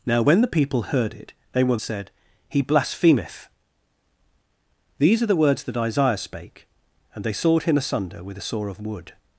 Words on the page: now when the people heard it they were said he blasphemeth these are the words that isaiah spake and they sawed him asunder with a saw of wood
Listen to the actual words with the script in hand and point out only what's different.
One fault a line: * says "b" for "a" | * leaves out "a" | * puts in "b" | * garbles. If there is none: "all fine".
all fine